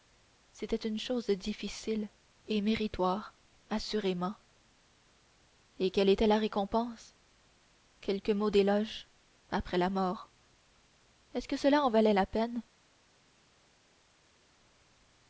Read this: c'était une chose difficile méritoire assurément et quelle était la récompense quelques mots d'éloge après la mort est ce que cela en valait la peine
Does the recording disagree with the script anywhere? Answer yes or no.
yes